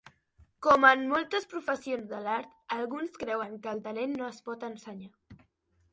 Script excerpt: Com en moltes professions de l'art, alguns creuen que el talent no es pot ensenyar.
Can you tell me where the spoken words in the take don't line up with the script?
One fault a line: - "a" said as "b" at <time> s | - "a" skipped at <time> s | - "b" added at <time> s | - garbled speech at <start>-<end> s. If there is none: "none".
none